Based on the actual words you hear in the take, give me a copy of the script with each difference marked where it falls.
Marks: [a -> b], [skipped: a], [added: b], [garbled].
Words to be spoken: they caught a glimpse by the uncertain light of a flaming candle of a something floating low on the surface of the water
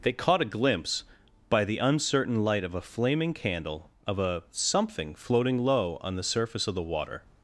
they caught a glimpse by the uncertain light of a flaming candle of a something floating low on the surface of the water